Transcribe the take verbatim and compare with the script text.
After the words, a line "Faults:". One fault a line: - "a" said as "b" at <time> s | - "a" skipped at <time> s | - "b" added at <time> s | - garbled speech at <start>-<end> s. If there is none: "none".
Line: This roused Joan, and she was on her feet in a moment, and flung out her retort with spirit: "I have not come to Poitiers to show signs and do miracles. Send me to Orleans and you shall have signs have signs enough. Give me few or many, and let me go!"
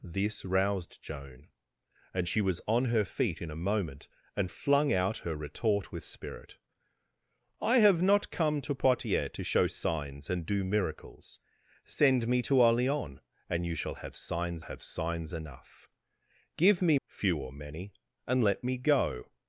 This roused Joan, and she was on her feet in a moment, and flung out her retort with spirit: "I have not come to Poitiers to show signs and do miracles. Send me to Orleans and you shall have signs have signs enough. Give me few or many, and let me go!"
Faults:
none